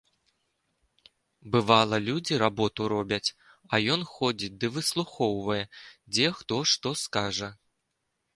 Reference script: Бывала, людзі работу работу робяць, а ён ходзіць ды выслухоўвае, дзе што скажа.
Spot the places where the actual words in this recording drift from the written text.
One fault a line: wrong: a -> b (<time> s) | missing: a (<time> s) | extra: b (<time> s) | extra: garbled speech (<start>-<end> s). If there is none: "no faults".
missing: работу (2.9 s)
extra: хто (6.4 s)